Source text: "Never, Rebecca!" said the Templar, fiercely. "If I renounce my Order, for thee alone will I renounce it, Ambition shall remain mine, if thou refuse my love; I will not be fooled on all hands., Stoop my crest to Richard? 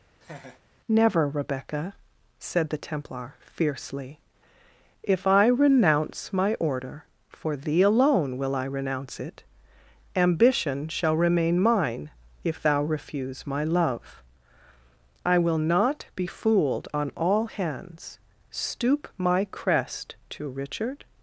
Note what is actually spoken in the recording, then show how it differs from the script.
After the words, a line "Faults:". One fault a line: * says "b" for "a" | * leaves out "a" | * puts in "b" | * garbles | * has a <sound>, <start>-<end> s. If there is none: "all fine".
"Never, Rebecca!" said the Templar, fiercely. "If I renounce my Order, for thee alone will I renounce it, Ambition shall remain mine, if thou refuse my love; I will not be fooled on all hands., Stoop my crest to Richard?
Faults:
* has a laugh, 0.2-0.6 s